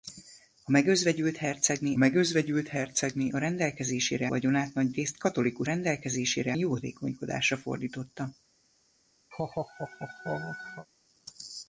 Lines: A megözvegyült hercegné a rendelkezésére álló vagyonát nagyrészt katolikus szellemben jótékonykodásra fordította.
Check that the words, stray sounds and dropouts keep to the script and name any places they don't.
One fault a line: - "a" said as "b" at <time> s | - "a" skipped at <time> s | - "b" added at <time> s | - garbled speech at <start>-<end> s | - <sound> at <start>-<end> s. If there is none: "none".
- "megözvegyült hercegné" added at 2.0 s
- "álló" skipped at 4.3 s
- "szellemben" said as "rendelkezésére" at 5.6 s
- laugh at 9.3-10.9 s